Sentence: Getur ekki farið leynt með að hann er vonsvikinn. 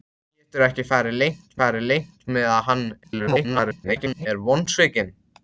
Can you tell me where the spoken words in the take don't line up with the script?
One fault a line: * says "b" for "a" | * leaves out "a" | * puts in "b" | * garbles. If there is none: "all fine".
* puts in "farið leynt"
* garbles